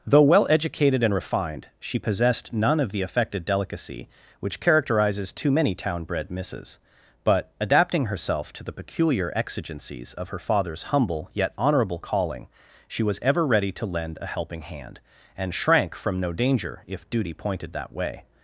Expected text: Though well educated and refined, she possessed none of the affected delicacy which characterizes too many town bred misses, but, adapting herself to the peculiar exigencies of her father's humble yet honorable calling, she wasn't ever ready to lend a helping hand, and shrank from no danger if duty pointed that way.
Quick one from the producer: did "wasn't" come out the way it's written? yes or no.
no